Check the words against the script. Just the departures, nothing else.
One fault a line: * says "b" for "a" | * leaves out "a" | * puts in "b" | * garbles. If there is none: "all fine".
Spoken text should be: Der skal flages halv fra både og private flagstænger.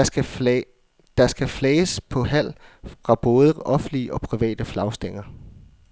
* puts in "på"
* puts in "offentlige"